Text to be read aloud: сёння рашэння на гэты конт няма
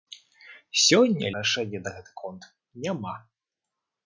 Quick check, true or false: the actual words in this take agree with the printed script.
true